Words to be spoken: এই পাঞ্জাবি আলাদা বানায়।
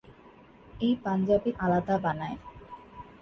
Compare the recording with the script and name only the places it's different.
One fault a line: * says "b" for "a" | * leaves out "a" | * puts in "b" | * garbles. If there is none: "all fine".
all fine